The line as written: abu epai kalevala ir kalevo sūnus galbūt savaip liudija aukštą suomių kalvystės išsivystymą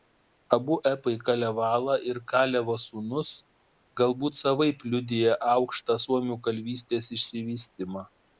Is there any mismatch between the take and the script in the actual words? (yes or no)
no